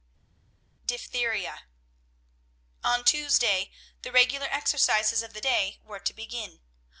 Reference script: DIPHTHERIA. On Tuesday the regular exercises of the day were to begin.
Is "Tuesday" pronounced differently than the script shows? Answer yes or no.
no